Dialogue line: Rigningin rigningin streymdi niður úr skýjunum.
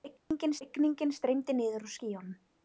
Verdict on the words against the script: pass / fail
pass